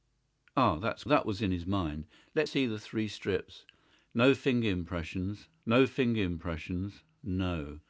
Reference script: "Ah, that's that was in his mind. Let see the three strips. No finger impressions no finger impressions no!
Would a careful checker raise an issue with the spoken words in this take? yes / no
no